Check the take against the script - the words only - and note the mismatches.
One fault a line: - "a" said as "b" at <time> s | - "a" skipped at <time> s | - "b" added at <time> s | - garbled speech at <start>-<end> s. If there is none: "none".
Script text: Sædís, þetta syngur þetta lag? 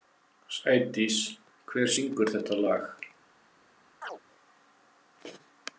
- "þetta" said as "hver" at 1.7 s